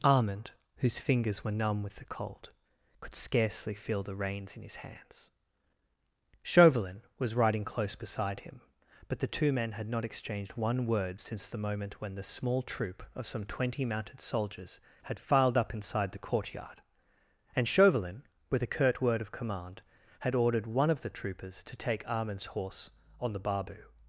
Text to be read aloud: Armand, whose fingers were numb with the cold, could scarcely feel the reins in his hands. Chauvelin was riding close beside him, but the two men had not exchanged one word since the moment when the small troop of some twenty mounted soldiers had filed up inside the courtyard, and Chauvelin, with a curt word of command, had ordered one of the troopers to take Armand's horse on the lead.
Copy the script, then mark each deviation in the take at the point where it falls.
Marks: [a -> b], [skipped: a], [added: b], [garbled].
Armand, whose fingers were numb with the cold, could scarcely feel the reins in his hands. Chauvelin was riding close beside him, but the two men had not exchanged one word since the moment when the small troop of some twenty mounted soldiers had filed up inside the courtyard, and Chauvelin, with a curt word of command, had ordered one of the troopers to take Armand's horse on the [lead. -> barbu]